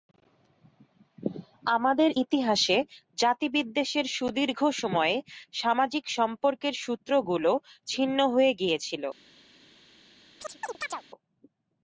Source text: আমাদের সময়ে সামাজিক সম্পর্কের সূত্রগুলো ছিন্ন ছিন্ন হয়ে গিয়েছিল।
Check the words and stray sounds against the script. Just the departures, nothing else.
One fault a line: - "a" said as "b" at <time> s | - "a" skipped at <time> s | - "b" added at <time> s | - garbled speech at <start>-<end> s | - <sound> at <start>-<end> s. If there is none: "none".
- "ইতিহাসে জাতিবিদ্বেষের সুদীর্ঘ" added at 2.2 s
- "ছিন্ন" skipped at 8.2 s
- chirp at 10.4-11.0 s